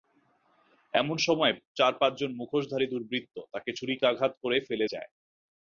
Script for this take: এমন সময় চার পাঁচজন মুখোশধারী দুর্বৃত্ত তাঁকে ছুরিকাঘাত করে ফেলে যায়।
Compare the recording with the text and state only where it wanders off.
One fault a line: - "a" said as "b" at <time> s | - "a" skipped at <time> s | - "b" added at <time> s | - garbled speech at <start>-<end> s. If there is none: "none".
none